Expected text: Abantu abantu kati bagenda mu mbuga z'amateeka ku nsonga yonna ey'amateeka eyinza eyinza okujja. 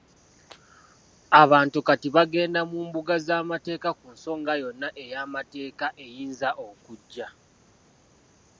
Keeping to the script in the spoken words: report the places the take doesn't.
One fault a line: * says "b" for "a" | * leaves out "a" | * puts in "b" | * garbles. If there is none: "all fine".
* leaves out "abantu"
* leaves out "eyinza"